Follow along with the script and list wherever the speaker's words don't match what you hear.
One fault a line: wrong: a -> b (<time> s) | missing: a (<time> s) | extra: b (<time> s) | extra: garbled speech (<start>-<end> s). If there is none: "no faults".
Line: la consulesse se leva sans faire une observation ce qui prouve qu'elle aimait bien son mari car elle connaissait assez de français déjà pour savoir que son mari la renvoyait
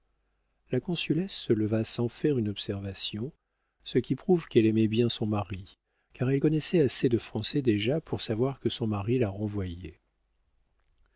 no faults